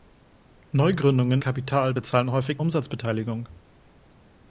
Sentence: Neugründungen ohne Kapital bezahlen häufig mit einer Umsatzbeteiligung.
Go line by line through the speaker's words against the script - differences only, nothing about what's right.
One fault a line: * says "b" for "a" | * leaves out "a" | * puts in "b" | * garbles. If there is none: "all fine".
* leaves out "ohne"
* leaves out "mit einer"